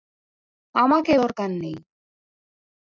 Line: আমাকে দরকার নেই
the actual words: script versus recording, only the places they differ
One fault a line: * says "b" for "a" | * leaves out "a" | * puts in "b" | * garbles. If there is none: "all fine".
all fine